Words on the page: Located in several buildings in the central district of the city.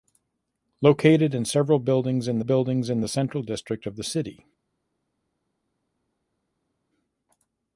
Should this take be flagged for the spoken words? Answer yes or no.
yes